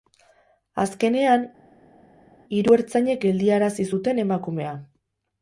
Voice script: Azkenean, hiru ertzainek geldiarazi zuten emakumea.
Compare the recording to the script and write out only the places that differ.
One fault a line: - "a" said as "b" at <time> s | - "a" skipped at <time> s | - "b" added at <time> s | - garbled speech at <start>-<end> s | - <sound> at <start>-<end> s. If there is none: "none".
none